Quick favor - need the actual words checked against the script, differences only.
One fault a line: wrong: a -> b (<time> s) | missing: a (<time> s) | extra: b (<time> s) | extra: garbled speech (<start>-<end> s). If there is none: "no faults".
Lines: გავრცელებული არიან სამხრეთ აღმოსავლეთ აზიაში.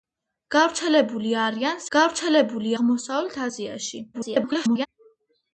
wrong: სამხრეთ -> გავრცელებული (2.0 s)
extra: garbled speech (4.1-4.9 s)